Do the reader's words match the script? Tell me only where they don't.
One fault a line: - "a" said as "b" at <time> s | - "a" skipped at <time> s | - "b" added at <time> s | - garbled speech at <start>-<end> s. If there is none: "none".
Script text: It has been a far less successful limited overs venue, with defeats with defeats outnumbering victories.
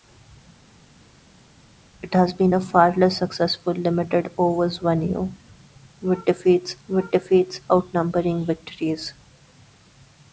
none